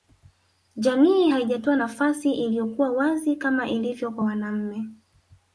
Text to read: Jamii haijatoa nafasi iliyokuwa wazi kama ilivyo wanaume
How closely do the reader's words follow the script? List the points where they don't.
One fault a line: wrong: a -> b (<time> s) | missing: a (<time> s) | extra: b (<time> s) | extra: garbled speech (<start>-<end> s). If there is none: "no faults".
extra: kwa (4.1 s)